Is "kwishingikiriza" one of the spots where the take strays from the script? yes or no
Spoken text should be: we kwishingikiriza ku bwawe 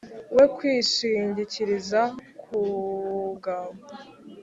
no